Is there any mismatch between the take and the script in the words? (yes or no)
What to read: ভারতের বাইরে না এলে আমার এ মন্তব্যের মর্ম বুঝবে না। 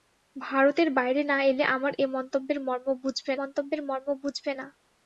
yes